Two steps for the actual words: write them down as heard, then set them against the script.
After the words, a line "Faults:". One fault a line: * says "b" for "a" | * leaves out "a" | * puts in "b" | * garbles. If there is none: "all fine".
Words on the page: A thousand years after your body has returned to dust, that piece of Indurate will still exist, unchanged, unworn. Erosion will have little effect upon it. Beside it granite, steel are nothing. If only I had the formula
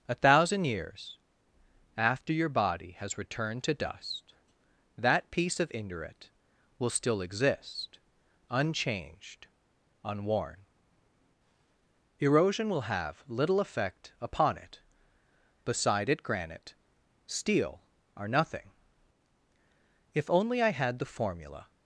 A thousand years after your body has returned to dust, that piece of Indurate will still exist, unchanged, unworn. Erosion will have little effect upon it. Beside it granite, steel are nothing. If only I had the formula
Faults:
all fine